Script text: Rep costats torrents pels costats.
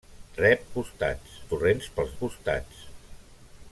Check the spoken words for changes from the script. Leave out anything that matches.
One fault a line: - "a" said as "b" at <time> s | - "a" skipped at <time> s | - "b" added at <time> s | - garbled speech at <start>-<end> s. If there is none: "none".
none